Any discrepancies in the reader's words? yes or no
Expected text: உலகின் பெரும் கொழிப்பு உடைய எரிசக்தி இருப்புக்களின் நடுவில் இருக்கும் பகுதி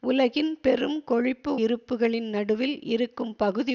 yes